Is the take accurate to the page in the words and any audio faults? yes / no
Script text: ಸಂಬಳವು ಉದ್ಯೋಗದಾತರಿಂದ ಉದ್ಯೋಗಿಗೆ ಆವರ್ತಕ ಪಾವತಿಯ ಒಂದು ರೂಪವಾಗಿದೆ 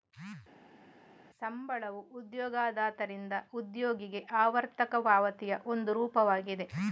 yes